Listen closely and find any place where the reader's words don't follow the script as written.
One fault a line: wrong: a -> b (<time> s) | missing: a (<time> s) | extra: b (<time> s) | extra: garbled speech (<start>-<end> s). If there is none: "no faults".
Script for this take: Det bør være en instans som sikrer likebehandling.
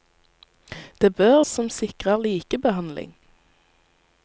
missing: være en instans (1.4 s)